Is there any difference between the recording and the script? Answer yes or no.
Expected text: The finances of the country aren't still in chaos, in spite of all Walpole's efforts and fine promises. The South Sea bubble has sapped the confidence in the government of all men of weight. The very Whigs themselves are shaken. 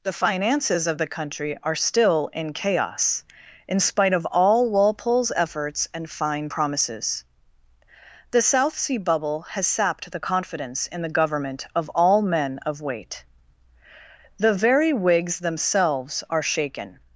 yes